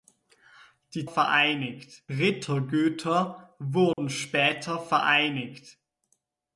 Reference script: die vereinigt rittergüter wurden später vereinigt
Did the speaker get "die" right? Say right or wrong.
right